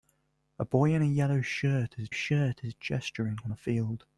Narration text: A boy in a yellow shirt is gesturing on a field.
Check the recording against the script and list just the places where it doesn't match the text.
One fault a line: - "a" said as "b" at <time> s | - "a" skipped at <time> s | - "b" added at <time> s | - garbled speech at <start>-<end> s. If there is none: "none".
- "shirt is" added at 2.1 s